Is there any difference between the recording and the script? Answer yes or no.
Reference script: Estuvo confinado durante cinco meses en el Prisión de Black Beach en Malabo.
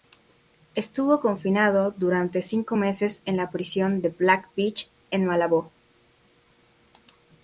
yes